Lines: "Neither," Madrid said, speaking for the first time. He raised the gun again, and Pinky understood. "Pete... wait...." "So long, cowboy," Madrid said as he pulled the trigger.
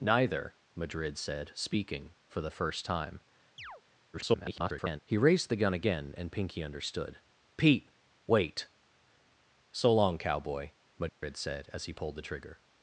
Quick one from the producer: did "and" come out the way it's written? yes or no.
yes